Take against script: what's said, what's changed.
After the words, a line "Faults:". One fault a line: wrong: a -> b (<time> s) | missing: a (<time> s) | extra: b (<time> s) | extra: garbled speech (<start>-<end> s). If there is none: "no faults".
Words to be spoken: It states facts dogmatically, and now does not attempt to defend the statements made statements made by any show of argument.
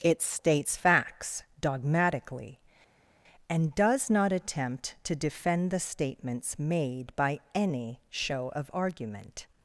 It states facts dogmatically, and does not attempt to defend the statements made by any show of argument.
Faults:
missing: now (3.7 s)
missing: statements made (7.2 s)